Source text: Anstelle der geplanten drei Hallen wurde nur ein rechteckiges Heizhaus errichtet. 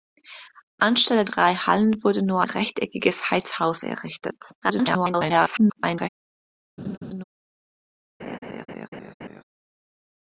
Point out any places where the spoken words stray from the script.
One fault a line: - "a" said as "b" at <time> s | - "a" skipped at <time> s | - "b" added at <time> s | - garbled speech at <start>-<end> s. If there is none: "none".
- "der geplanten" skipped at 1.2 s
- "ein" skipped at 2.4 s
- garbled speech at 4.6-6.1 s